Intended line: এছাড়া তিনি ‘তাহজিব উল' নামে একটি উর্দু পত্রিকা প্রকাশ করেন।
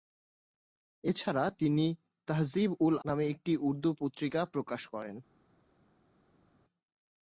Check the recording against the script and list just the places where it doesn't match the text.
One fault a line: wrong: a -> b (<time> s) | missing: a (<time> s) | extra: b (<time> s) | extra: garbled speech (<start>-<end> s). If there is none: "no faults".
no faults